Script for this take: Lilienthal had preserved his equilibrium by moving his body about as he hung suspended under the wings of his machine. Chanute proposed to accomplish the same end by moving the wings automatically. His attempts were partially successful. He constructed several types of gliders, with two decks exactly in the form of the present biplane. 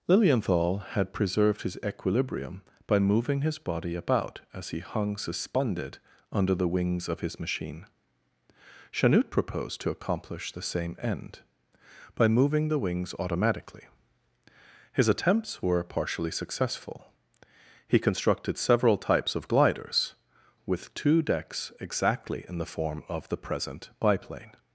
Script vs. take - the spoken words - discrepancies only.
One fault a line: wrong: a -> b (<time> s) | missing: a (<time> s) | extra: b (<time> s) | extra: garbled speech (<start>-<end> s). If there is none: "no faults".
no faults